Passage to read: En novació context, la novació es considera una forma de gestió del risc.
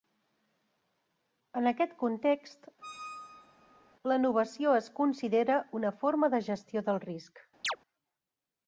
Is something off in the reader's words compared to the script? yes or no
yes